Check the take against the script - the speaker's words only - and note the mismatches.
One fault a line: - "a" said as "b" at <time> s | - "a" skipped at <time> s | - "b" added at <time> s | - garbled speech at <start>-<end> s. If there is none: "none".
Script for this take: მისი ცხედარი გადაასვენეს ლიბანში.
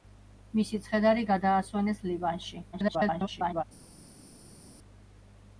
- garbled speech at 2.7-3.6 s